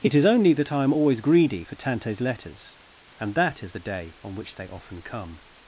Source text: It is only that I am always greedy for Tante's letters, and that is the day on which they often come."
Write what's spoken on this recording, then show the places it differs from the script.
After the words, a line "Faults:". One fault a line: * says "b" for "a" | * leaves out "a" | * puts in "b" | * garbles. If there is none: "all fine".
It is only that I am always greedy for Tante's letters, and that is the day on which they often come."
Faults:
all fine